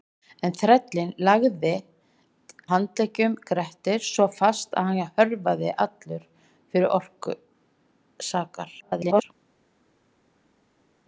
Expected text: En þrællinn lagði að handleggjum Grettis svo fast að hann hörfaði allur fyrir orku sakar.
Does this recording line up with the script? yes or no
no